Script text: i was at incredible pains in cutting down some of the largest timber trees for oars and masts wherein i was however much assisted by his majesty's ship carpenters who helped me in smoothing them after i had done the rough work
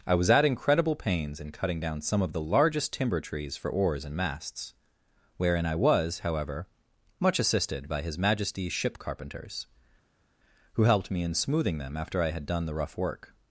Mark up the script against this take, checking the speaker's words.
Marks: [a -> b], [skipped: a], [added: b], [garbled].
i was at incredible pains in cutting down some of the largest timber trees for oars and masts wherein i was however much assisted by his majesty's ship carpenters who helped me in smoothing them after i had done the rough work